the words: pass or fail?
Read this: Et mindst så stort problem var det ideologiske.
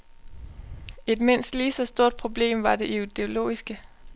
fail